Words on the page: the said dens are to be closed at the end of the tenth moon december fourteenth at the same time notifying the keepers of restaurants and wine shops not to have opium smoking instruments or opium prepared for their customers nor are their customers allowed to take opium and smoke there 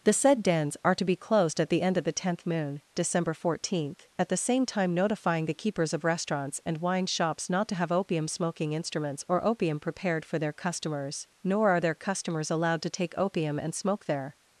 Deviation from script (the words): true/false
false